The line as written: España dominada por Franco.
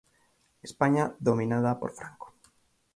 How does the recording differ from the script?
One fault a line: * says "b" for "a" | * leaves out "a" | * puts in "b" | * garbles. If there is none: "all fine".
all fine